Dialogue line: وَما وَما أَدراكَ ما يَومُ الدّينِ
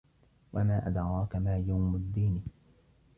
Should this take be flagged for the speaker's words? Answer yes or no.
yes